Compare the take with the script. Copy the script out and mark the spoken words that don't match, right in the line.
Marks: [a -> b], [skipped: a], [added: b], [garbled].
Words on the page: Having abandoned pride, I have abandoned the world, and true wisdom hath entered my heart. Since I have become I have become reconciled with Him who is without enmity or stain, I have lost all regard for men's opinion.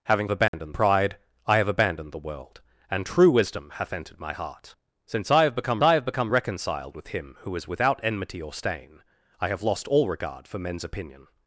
Having abandoned pride, I have abandoned the world, and true wisdom hath entered my heart. Since I have become I have become reconciled with Him who is without enmity or stain, I have lost all regard for men's opinion.